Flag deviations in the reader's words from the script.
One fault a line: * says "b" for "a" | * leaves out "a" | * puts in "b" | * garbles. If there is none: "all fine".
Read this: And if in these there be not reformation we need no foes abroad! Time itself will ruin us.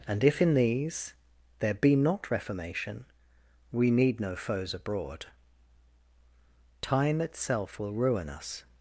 all fine